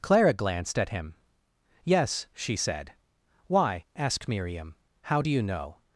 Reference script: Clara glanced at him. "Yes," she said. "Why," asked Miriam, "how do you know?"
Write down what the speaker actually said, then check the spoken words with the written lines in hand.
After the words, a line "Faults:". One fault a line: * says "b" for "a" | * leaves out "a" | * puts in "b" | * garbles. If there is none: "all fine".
Clara glanced at him. "Yes," she said. "Why," asked Miriam, "how do you know?"
Faults:
all fine